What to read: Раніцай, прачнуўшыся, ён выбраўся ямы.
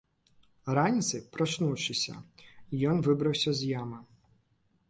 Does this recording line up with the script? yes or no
no